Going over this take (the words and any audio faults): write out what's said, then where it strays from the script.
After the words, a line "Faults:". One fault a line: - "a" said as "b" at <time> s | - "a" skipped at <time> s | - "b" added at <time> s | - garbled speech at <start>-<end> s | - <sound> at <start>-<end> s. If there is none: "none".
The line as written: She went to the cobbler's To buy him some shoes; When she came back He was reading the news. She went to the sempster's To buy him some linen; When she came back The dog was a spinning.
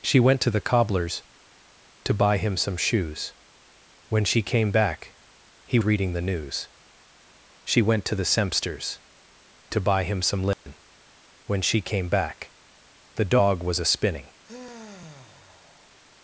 She went to the cobbler's To buy him some shoes; When she came back He reading the news. She went to the sempster's To buy him some linen; When she came back The dog was a spinning.
Faults:
- "was" skipped at 5.8 s
- dropout at 10.5-10.7 s
- sigh at 14.4-16.0 s